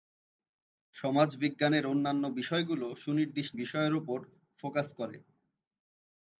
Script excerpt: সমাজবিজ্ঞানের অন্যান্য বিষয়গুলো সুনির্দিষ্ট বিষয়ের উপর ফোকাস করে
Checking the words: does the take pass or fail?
pass